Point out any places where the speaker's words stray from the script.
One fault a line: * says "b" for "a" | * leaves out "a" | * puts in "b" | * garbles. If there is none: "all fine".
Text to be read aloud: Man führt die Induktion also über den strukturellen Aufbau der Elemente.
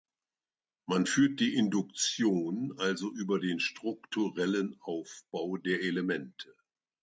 all fine